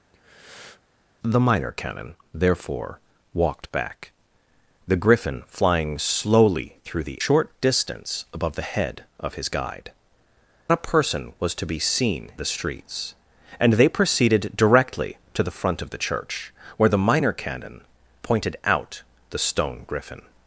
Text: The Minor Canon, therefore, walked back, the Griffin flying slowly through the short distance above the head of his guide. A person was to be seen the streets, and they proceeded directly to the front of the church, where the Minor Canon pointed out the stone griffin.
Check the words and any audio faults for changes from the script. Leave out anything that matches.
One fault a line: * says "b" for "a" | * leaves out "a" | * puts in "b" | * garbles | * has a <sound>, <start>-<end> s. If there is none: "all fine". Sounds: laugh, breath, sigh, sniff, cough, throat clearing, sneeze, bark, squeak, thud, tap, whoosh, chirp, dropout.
* has a breath, 0.1-0.8 s